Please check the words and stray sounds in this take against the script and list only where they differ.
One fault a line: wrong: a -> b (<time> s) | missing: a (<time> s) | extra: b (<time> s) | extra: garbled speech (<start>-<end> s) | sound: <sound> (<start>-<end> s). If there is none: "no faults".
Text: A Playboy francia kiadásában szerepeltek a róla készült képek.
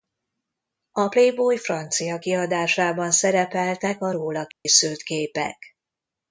sound: dropout (4.5-4.7 s)